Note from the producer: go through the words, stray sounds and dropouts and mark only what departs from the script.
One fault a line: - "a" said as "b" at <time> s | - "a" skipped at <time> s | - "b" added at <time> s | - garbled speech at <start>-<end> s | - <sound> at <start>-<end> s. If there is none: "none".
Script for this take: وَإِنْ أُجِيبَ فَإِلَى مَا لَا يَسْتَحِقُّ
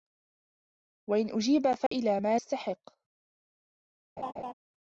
- dropout at 1.9-1.9 s
- "لَا" skipped at 2.4 s
- laugh at 4.2-4.5 s